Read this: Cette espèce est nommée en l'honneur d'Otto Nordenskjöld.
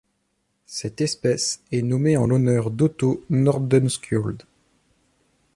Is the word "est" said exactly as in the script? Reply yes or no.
yes